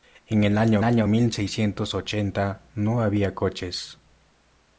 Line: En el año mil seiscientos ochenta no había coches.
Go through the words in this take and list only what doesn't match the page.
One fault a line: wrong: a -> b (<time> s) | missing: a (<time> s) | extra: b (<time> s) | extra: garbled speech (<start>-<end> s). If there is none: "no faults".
extra: año (0.8 s)